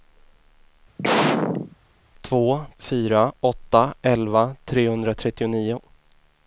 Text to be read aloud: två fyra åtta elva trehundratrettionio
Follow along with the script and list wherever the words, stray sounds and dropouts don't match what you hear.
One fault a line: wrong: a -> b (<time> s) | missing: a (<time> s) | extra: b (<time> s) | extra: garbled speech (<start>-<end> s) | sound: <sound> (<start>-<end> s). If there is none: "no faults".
sound: sneeze (1.0-1.8 s)